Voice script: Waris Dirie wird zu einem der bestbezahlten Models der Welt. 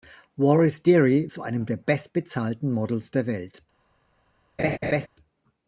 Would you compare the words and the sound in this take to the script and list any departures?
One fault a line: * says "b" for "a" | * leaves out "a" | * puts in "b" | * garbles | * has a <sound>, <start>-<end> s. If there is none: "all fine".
* leaves out "wird"
* has a laugh, 4.6-5.1 s